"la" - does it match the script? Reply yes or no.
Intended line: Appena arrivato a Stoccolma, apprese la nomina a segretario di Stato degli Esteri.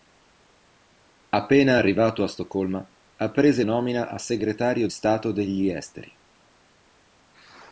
no